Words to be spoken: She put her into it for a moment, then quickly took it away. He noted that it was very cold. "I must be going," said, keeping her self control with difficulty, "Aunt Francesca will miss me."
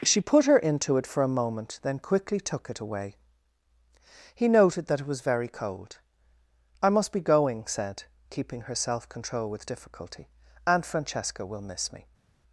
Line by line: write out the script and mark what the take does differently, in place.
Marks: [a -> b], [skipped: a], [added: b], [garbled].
She put her into it for a moment, then quickly took it away. He noted that it was very cold. "I must be going," said, keeping her self control with difficulty, "Aunt Francesca will miss me."